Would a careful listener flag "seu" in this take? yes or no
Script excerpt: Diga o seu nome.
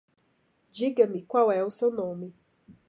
no